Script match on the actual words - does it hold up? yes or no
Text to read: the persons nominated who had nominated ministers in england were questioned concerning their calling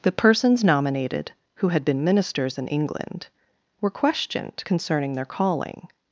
no